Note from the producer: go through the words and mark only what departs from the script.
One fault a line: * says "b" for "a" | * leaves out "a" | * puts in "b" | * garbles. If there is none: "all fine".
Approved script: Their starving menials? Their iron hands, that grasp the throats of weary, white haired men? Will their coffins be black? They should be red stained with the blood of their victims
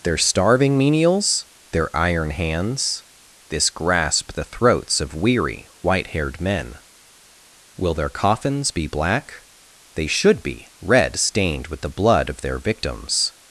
* says "this" for "that"